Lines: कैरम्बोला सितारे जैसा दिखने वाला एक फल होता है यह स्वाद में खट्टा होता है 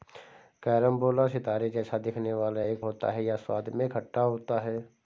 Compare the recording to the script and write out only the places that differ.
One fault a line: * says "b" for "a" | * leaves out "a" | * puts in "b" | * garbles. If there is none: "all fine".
* leaves out "फल"